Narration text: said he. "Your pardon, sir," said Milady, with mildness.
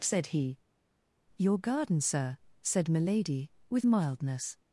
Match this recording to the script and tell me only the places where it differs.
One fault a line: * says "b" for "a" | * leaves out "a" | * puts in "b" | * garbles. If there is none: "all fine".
* says "garden" for "pardon"